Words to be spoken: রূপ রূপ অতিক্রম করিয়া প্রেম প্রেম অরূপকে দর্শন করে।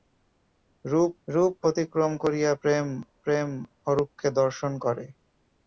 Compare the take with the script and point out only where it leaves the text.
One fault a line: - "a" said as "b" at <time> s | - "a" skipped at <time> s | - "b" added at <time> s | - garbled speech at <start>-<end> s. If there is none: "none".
none